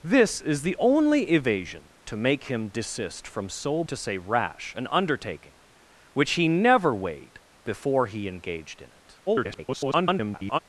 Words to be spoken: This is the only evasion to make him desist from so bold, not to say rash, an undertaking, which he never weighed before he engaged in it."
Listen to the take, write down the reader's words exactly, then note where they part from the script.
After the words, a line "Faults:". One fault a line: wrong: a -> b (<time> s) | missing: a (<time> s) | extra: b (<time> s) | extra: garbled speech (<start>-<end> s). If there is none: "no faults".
This is the only evasion to make him desist from so to say rash, an undertaking, which he never weighed before he engaged in it." [garbled]
Faults:
missing: bold not (3.8 s)
extra: garbled speech (9.3-10.6 s)